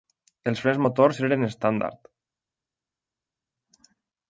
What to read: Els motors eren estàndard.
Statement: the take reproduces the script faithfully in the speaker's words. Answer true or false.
false